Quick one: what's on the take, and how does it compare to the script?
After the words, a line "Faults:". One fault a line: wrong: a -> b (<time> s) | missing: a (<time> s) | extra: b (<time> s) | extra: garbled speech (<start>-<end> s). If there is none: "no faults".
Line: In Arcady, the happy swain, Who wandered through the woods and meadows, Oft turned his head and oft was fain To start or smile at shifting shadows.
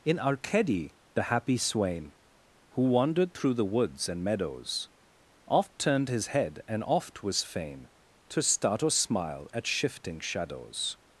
In Arcady, the happy swain, Who wandered through the woods and meadows, Oft turned his head and oft was fain To start or smile at shifting shadows.
Faults:
no faults